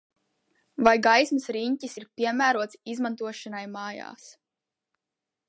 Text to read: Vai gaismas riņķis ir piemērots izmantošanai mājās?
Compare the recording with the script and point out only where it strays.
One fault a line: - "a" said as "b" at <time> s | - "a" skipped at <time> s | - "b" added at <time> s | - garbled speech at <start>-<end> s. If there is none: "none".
none